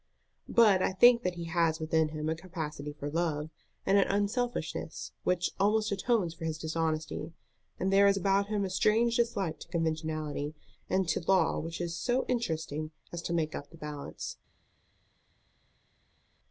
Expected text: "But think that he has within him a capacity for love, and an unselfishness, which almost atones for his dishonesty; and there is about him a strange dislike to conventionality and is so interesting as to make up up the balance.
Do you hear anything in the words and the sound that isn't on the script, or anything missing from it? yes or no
yes